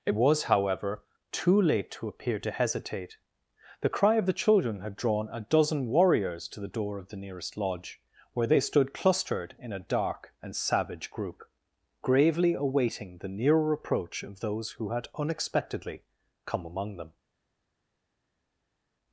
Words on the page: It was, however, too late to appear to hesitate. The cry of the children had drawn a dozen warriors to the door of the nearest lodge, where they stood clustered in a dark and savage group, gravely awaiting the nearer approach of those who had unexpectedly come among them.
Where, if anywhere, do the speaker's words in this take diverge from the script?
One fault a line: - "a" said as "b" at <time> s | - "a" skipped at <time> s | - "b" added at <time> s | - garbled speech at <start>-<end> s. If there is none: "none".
none